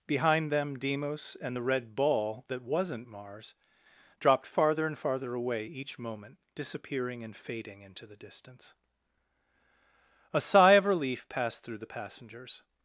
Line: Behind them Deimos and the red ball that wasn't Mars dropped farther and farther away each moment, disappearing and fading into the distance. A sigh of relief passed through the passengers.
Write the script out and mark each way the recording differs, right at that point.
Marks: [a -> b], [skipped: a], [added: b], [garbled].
Behind them Deimos and the red ball that wasn't Mars dropped farther and farther away each moment, disappearing and fading into the distance. A sigh of relief passed through the passengers.